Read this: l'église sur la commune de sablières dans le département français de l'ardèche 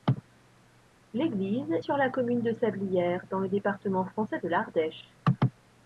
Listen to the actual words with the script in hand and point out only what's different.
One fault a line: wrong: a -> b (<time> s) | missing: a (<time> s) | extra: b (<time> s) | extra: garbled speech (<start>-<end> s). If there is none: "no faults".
no faults